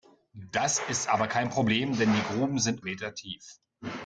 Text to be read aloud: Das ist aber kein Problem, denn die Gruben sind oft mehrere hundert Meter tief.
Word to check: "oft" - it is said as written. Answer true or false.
false